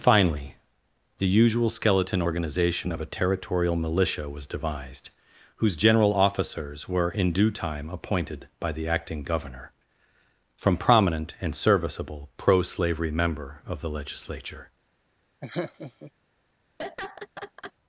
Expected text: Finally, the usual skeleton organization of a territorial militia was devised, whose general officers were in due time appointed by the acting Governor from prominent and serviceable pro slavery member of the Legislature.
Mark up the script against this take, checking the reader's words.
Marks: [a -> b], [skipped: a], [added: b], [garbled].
Finally, the usual skeleton organization of a territorial militia was devised, whose general officers were in due time appointed by the acting Governor from prominent and serviceable pro slavery member of the Legislature.